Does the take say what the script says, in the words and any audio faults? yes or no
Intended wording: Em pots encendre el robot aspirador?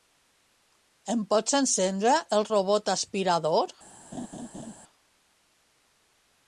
no